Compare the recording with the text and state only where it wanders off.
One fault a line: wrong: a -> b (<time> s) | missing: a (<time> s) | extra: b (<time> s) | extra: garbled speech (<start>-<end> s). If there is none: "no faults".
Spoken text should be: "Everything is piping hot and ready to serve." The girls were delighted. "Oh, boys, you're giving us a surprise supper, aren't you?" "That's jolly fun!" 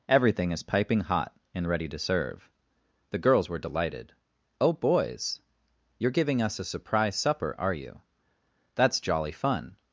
wrong: aren't -> are (7.6 s)